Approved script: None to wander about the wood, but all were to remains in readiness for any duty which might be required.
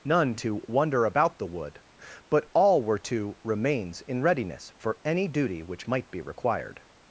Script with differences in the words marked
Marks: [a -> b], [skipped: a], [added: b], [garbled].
None to wander about the wood, but all were to remains in readiness for any duty which might be required.